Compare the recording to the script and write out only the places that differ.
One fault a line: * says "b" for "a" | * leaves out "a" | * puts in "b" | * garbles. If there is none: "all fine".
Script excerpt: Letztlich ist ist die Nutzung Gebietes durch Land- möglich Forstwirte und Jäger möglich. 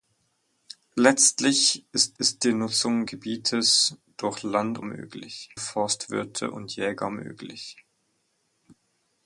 all fine